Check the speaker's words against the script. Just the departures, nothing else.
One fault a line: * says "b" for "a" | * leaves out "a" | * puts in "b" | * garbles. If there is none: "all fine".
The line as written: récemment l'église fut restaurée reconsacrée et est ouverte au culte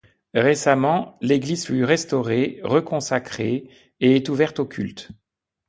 all fine